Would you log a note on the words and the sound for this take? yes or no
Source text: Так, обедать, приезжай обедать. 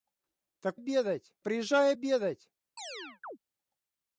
yes